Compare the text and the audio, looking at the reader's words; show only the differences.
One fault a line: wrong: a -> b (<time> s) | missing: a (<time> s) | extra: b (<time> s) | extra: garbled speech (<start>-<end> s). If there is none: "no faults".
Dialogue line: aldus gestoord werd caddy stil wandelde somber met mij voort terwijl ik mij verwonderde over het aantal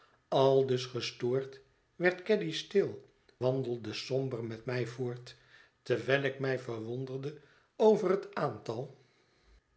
no faults